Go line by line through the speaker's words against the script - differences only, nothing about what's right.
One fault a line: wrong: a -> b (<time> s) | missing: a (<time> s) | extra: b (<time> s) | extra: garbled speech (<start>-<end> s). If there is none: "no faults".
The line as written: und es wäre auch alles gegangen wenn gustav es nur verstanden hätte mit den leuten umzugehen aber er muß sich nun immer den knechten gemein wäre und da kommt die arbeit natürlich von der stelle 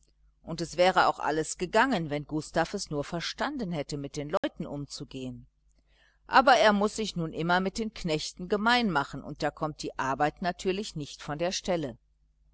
extra: mit (7.6 s)
wrong: wäre -> machen (8.9 s)
extra: nicht (11.0 s)